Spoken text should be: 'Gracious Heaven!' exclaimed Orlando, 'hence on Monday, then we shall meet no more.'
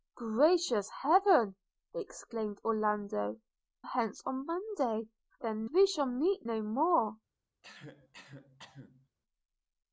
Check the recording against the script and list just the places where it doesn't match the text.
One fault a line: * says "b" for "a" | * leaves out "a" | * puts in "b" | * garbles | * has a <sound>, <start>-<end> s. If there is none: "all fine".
* has a cough, 7.6-9.1 s